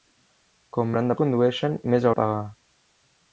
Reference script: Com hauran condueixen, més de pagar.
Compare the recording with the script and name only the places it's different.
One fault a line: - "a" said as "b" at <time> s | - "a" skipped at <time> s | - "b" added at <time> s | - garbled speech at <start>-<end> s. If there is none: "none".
none